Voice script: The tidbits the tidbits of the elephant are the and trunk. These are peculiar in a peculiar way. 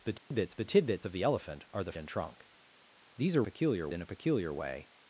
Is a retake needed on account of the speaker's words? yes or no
no